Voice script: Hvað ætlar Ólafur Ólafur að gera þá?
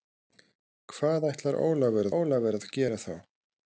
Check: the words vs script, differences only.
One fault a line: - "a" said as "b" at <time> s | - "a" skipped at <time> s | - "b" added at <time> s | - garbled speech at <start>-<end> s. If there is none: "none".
none